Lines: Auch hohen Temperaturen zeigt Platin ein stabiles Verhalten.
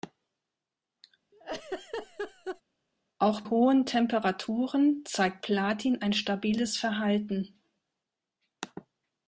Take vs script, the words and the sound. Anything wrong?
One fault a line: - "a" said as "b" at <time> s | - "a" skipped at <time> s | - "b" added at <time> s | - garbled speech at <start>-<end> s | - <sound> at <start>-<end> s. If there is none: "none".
- laugh at 1.3-2.6 s